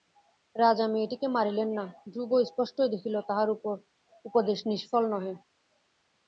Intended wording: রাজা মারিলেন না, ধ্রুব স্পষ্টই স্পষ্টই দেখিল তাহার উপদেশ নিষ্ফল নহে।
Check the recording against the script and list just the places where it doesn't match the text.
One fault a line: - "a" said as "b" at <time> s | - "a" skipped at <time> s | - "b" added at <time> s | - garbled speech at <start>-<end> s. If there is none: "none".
- "মেয়েটিকে" added at 0.9 s
- "স্পষ্টই" skipped at 2.9 s